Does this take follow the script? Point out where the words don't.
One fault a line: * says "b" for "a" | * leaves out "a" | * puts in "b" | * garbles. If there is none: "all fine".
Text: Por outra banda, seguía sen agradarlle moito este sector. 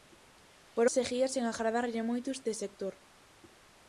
* leaves out "outra banda"